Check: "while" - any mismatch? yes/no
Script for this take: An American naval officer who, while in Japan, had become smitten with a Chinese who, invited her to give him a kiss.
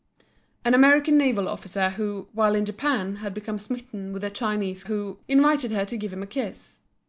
no